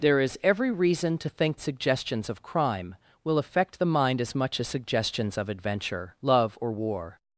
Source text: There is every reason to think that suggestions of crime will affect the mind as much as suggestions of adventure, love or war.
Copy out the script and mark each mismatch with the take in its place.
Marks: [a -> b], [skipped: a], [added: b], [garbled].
There is every reason to think [skipped: that] suggestions of crime will affect the mind as much as suggestions of adventure, love or war.